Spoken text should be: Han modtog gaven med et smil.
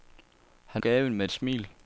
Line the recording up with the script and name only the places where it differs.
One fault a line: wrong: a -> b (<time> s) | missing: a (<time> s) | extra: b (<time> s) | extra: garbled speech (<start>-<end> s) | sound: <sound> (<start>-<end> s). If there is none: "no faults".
missing: modtog (0.8 s)